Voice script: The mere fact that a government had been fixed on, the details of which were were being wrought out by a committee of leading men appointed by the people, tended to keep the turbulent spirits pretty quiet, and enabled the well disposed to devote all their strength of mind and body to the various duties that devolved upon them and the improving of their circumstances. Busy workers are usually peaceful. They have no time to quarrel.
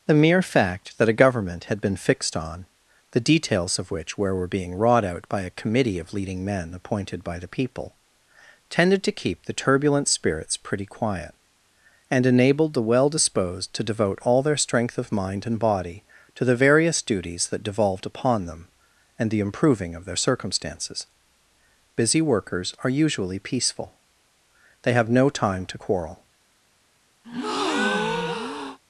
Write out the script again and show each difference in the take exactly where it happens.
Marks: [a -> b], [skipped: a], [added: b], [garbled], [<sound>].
The mere fact that a government had been fixed on, the details of which were were being wrought out by a committee of leading men appointed by the people, tended to keep the turbulent spirits pretty quiet, and enabled the well disposed to devote all their strength of mind and body to the various duties that devolved upon them and the improving of their circumstances. Busy workers are usually peaceful. They have no time to quarrel. [breath]